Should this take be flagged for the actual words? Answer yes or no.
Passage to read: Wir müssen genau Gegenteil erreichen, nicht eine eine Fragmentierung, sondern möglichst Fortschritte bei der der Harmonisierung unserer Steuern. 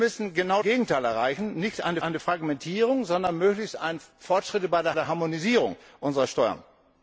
no